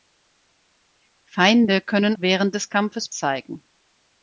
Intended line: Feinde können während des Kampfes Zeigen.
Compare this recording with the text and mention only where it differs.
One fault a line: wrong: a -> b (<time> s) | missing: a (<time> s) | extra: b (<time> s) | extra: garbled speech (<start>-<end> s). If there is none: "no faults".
no faults